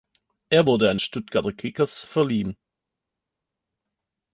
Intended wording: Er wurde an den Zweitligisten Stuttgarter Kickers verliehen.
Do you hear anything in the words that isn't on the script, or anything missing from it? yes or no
yes